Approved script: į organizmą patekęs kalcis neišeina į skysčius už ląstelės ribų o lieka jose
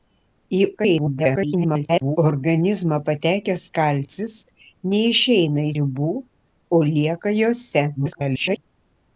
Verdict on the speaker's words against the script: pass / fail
fail